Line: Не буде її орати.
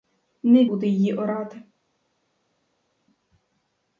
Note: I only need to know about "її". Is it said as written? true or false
true